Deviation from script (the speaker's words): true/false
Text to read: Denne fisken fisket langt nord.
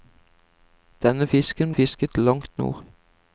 false